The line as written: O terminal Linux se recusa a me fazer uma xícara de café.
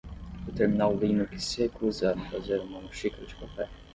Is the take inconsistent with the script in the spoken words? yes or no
no